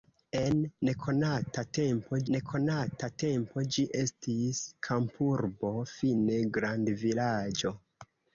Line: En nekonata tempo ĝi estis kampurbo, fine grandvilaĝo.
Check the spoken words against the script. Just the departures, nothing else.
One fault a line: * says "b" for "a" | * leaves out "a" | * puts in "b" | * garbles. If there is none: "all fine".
* puts in "nekonata tempo"